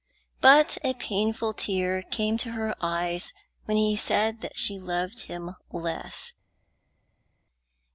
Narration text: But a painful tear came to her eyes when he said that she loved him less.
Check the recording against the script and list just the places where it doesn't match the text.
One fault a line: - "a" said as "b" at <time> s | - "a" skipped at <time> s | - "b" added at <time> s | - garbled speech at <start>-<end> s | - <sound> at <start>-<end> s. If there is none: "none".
none